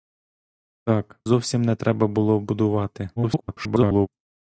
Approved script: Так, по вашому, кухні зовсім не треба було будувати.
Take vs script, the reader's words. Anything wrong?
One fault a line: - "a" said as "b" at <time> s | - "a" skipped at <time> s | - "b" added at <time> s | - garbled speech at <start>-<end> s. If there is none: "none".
- "по вашому кухні" skipped at 1.2 s
- garbled speech at 3.2-4.1 s